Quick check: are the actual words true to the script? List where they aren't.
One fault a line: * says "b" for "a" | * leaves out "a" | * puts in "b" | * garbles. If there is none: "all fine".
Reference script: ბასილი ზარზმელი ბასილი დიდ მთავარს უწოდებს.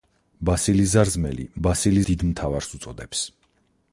all fine